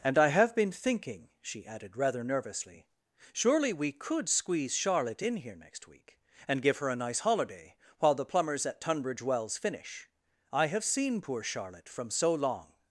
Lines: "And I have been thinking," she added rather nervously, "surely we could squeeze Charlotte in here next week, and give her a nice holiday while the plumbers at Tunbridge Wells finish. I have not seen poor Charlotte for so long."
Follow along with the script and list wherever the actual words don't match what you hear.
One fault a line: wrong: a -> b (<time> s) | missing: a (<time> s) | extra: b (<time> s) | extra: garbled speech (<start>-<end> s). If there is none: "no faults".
missing: not (10.8 s)
wrong: for -> from (11.9 s)